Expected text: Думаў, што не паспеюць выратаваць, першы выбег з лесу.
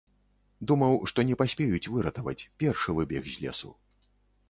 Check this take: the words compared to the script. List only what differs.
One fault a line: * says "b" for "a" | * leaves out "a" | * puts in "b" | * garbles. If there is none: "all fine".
all fine